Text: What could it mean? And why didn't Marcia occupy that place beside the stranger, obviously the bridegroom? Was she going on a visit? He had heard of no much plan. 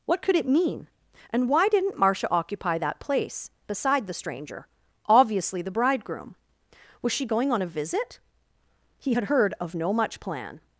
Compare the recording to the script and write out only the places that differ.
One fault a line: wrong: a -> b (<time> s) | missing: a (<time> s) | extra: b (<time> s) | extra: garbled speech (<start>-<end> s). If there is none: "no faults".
no faults